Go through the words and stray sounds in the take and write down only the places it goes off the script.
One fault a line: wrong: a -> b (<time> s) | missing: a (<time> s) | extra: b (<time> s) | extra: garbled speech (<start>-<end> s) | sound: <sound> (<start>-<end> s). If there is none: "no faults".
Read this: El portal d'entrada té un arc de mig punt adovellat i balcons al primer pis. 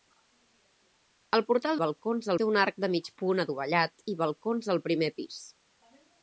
wrong: d'entrada -> balcons (1.8 s)